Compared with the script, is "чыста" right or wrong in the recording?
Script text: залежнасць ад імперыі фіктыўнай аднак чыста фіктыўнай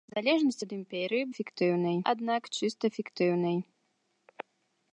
right